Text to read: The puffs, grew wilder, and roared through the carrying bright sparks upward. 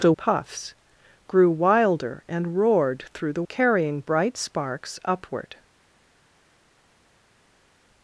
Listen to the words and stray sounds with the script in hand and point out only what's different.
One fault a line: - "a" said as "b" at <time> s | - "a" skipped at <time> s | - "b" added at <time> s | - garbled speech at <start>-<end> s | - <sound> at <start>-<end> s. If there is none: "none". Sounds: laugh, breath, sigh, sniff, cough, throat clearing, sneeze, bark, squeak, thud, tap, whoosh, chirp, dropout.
none